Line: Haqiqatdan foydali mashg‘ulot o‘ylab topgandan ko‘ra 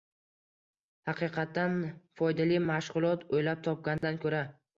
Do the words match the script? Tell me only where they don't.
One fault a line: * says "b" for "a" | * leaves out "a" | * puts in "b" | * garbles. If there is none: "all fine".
all fine